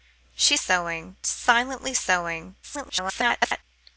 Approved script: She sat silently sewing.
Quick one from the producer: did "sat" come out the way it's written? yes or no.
no